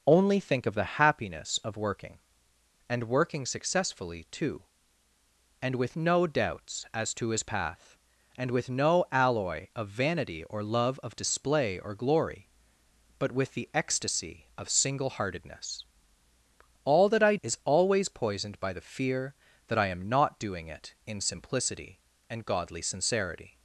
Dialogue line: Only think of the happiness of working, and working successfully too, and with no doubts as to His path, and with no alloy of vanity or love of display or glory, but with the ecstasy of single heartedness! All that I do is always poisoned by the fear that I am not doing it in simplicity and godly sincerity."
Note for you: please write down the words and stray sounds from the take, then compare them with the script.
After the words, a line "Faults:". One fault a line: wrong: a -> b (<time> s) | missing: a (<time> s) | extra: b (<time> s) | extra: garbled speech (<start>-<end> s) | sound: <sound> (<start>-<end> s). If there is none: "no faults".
Only think of the happiness of working, and working successfully too, and with no doubts as to His path, and with no alloy of vanity or love of display or glory, but with the ecstasy of single heartedness! All that I is always poisoned by the fear that I am not doing it in simplicity and godly sincerity."
Faults:
missing: do (17.4 s)